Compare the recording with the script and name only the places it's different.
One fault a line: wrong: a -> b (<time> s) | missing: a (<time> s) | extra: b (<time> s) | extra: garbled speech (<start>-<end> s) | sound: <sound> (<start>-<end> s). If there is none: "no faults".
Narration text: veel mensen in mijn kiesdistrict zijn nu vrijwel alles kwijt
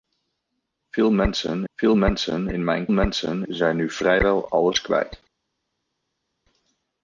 extra: veel mensen (1.7 s)
wrong: kiesdistrict -> mensen (2.9 s)